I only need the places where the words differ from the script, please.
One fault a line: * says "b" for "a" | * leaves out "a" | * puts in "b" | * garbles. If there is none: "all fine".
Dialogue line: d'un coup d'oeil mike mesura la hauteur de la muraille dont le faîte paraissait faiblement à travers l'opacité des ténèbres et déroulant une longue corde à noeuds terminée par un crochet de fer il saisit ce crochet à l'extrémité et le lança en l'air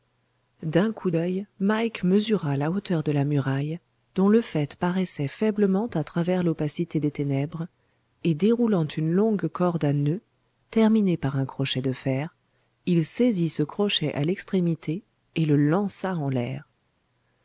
all fine